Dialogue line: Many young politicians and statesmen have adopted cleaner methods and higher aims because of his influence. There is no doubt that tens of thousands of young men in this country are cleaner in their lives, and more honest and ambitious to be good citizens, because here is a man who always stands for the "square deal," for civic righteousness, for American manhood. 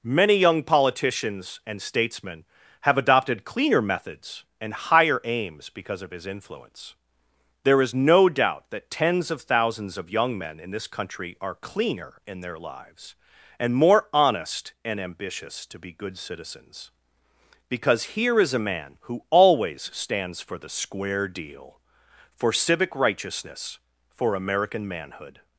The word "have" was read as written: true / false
true